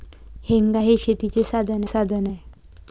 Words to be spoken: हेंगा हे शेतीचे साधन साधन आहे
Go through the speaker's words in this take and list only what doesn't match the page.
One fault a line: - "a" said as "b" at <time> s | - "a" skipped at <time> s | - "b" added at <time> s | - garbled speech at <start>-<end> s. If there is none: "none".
none